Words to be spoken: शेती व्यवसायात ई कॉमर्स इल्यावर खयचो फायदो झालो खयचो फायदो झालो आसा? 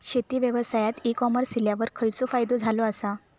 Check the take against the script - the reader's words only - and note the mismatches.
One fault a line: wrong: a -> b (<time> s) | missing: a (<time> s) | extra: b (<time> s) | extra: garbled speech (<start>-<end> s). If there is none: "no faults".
missing: खयचो फायदो झालो (2.8 s)